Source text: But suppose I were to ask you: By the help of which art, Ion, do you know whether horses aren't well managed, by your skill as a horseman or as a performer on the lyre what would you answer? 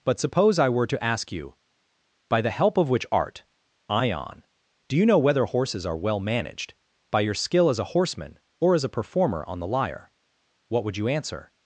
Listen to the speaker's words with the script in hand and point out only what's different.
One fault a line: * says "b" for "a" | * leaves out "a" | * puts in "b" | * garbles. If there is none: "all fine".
* says "are" for "aren't"